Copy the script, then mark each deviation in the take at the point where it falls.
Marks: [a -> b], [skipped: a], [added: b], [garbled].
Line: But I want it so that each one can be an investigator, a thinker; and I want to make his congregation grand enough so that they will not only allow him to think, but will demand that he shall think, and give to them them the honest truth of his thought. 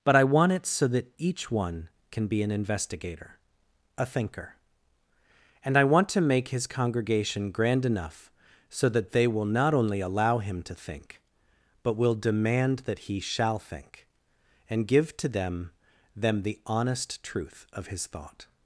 But I want it so that each one can be an investigator, a thinker; and I want to make his congregation grand enough so that they will not only allow him to think, but will demand that he shall think, and give to them them the honest truth of his thought.